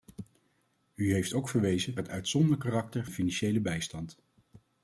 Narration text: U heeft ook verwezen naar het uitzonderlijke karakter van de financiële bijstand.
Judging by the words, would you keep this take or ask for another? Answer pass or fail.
fail